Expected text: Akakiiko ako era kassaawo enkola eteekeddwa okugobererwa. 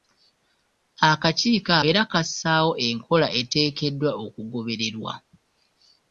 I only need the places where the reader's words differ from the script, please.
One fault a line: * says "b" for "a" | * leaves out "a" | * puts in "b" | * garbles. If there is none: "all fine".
* leaves out "ako"